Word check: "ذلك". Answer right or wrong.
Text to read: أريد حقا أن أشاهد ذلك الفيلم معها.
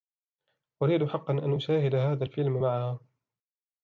wrong